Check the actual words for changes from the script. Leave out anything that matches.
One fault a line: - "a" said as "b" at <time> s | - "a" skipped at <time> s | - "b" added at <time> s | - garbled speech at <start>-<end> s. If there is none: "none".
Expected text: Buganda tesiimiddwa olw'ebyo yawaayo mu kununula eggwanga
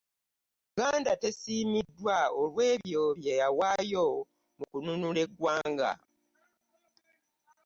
- "bye" added at 3.2 s